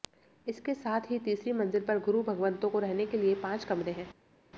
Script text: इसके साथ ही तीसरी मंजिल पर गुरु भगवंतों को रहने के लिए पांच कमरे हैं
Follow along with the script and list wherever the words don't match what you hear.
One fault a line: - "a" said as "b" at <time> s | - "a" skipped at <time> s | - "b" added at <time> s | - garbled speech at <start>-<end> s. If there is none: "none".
none